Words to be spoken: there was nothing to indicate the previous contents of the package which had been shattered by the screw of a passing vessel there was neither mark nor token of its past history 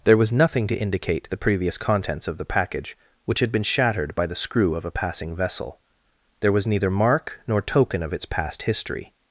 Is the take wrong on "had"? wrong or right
right